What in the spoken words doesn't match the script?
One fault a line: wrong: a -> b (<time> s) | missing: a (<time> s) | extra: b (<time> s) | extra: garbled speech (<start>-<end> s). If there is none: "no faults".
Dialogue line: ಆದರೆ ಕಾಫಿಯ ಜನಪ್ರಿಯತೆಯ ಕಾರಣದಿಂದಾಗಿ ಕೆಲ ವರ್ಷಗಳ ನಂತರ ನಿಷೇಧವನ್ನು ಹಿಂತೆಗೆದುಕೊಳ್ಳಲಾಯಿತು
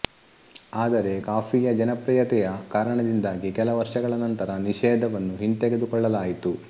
no faults